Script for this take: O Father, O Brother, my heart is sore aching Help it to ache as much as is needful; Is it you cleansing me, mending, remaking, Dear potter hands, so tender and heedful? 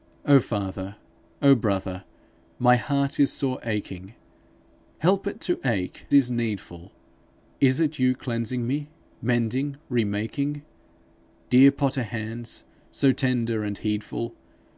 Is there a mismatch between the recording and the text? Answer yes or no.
yes